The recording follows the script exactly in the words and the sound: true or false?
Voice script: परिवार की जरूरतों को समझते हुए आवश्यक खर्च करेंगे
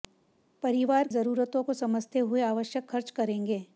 false